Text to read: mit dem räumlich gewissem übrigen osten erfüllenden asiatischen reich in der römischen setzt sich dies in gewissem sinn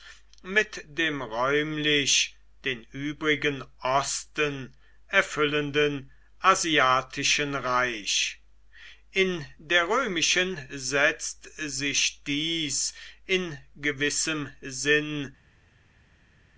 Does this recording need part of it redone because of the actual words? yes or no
yes